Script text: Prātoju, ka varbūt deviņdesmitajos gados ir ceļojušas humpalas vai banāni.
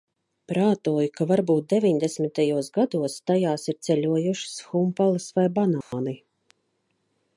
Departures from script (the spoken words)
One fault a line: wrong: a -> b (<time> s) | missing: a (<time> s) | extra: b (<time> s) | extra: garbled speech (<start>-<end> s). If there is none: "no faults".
extra: tajās (3.3 s)